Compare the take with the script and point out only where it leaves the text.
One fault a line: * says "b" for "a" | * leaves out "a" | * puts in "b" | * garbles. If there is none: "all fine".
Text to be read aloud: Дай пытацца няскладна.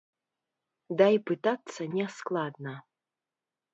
all fine